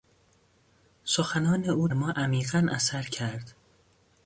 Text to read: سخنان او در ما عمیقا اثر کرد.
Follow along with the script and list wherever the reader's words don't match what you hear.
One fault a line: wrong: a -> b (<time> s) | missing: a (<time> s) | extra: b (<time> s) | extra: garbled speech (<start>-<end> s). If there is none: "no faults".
missing: در (1.9 s)